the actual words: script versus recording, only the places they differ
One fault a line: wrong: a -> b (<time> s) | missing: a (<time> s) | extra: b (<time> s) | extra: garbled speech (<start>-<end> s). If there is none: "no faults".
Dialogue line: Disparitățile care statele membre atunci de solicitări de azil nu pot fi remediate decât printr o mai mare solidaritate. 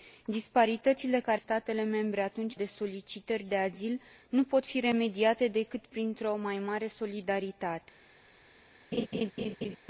no faults